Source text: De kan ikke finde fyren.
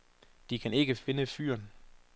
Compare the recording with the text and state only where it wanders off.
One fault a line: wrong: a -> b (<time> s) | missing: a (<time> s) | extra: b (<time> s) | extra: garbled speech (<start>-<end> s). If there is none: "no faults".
no faults